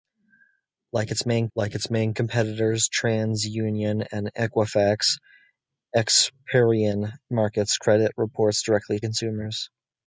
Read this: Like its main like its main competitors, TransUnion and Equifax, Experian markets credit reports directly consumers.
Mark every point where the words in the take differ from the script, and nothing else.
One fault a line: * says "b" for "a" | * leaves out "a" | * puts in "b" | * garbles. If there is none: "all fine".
all fine